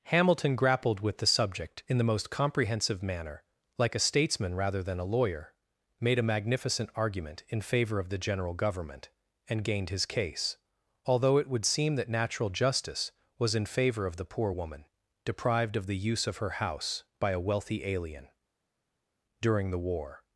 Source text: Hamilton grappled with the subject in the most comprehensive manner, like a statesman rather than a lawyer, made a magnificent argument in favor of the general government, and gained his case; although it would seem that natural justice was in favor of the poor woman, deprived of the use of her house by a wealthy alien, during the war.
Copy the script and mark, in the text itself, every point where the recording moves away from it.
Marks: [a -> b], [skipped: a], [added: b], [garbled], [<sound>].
Hamilton grappled with the subject in the most comprehensive manner, like a statesman rather than a lawyer, made a magnificent argument in favor of the general government, and gained his case; although it would seem that natural justice was in favor of the poor woman, deprived of the use of her house by a wealthy alien, during the war.